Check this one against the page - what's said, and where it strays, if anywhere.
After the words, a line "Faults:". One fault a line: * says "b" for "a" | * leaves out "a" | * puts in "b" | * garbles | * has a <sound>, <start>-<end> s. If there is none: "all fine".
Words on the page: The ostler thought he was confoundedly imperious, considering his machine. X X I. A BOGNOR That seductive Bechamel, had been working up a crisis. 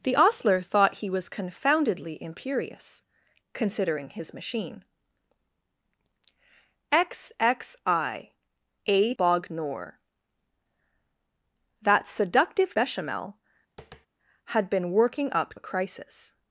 The ostler thought he was confoundedly imperious, considering his machine. X X I. A BOGNOR That seductive Bechamel, had been working up a crisis.
Faults:
* has a tap, 13.8-14.1 s